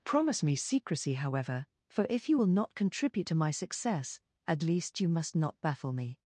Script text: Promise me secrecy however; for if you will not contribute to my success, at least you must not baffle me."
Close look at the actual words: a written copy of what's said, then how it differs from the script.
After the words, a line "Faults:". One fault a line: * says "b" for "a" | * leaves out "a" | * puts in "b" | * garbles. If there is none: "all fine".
Promise me secrecy however; for if you will not contribute to my success, at least you must not baffle me."
Faults:
all fine